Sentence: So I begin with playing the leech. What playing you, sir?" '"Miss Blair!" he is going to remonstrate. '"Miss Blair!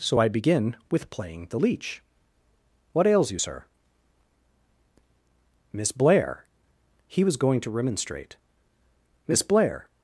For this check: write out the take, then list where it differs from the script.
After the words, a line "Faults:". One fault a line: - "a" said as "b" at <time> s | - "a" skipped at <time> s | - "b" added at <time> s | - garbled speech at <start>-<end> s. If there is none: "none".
So I begin with playing the leech. What ails you, sir?" '"Miss Blair!" he was going to remonstrate. '"Miss Blair!
Faults:
- "playing" said as "ails" at 3.1 s
- "is" said as "was" at 7.2 s